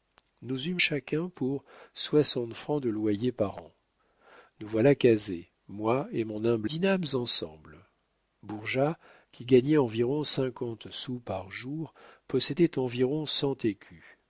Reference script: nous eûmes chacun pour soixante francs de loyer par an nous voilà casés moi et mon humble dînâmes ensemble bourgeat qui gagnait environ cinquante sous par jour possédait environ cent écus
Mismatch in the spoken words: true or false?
false